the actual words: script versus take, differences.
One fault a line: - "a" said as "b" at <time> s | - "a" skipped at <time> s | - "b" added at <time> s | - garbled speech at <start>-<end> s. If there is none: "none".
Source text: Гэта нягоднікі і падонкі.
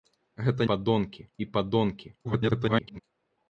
- "нягоднікі" said as "падонкі" at 0.7 s
- garbled speech at 2.2-3.0 s